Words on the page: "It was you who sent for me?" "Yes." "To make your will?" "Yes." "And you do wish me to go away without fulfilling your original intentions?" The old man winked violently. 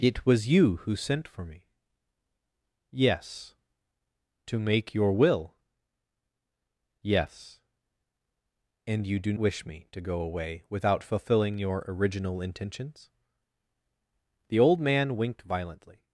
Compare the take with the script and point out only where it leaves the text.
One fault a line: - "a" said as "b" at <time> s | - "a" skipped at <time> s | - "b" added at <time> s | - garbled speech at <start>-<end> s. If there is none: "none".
none